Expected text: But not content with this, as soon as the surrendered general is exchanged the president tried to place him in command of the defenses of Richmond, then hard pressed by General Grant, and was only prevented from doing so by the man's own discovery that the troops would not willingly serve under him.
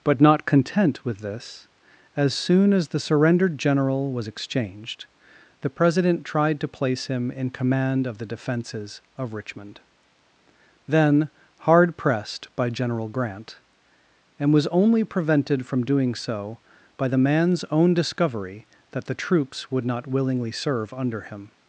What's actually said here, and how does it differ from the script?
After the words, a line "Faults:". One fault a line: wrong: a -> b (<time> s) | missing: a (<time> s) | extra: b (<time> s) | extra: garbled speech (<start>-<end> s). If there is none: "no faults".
But not content with this, as soon as the surrendered general was exchanged the president tried to place him in command of the defenses of Richmond, then hard pressed by General Grant, and was only prevented from doing so by the man's own discovery that the troops would not willingly serve under him.
Faults:
wrong: is -> was (4.1 s)